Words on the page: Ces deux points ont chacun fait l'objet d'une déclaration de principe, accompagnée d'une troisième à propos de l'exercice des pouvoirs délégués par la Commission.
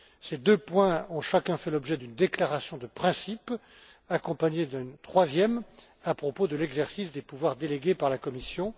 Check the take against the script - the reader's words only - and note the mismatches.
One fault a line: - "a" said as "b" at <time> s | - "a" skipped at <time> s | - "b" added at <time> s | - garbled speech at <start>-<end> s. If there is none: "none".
none